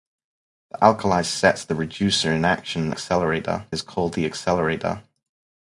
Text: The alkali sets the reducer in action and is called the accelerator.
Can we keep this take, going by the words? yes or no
no